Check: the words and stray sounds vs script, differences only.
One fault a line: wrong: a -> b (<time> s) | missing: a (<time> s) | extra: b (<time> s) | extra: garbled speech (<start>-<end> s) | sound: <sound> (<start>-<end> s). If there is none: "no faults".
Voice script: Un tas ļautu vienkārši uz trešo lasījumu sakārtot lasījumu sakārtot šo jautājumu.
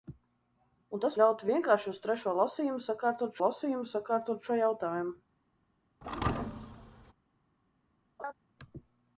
sound: thud (6.0-7.1 s)
sound: laugh (8.2-8.3 s)